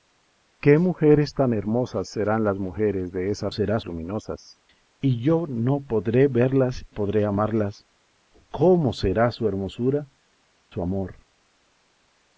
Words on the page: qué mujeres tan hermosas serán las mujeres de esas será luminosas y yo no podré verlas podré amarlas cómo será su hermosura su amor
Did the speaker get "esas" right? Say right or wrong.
right